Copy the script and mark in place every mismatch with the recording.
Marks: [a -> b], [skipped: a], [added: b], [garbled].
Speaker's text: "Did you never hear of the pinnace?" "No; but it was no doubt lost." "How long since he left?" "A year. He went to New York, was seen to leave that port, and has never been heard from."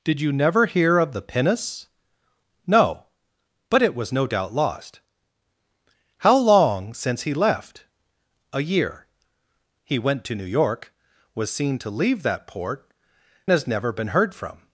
"Did you never hear of the pinnace?" "No; but it was no doubt lost." "How long since he left?" "A year. He went to New York, was seen to leave that port, [skipped: and] has never been heard from."